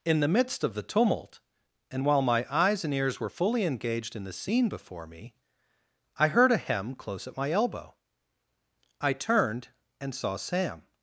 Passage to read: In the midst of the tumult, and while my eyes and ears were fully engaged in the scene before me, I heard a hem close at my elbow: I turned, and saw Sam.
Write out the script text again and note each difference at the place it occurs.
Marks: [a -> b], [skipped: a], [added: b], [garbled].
In the midst of the tumult, and while my eyes and ears were fully engaged in the scene before me, I heard a hem close at my elbow: I turned, and saw Sam.